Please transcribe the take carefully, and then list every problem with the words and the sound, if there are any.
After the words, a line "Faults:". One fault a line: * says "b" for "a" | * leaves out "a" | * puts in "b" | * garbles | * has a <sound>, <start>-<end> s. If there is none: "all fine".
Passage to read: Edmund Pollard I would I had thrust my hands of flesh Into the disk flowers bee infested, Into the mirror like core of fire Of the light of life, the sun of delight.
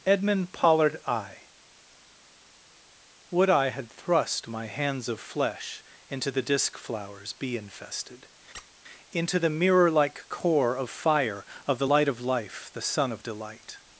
Edmund Pollard I would I had thrust my hands of flesh Into the disk flowers bee infested, Into the mirror like core of fire Of the light of life, the sun of delight.
Faults:
* has a squeak, 8.5-8.7 s